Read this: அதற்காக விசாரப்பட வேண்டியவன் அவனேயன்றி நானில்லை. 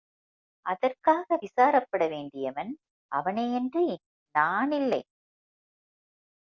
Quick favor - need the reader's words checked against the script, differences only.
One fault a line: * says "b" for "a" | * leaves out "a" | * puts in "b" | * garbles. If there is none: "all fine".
all fine